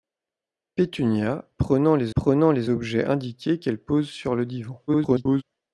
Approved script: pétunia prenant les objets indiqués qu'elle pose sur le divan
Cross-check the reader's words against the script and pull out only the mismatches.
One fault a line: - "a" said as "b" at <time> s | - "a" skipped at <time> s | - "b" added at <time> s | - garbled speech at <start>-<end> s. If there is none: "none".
- "prenant les" added at 2.2 s
- garbled speech at 4.9-5.4 s